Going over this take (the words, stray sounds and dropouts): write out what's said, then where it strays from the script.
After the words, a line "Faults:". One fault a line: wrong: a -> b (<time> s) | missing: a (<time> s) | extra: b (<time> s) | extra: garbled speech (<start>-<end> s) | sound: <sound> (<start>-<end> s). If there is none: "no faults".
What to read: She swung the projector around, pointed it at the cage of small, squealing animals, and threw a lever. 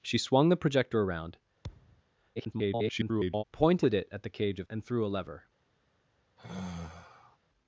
She swung the projector around, [garbled] pointed it at the cage of and threw a lever.
Faults:
sound: thud (1.6-2.0 s)
extra: garbled speech (2.4-3.4 s)
missing: small squealing animals (4.7 s)
sound: sigh (6.4-7.4 s)